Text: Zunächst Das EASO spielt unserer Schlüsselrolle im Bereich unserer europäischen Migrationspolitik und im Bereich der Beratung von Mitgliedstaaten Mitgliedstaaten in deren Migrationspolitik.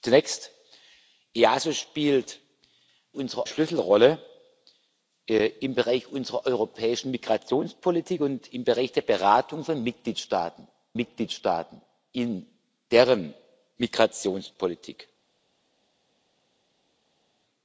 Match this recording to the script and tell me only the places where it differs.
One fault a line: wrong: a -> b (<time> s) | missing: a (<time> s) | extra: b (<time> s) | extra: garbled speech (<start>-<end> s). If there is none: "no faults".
no faults